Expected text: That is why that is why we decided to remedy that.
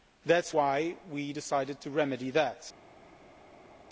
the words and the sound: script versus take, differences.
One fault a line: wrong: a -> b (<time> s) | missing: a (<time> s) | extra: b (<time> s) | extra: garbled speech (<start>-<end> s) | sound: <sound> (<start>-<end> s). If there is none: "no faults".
missing: that is why (1.0 s)